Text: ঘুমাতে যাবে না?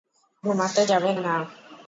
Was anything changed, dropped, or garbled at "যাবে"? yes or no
no